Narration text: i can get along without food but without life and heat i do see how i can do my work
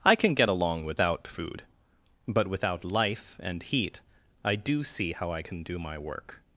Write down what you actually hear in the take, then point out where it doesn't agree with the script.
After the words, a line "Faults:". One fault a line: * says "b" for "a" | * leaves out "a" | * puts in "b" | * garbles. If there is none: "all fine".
i can get along without food but without life and heat i do see how i can do my work
Faults:
all fine